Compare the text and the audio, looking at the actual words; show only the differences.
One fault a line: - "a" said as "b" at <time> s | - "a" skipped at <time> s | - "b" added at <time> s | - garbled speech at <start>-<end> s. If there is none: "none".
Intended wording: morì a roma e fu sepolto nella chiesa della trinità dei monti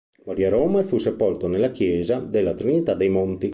none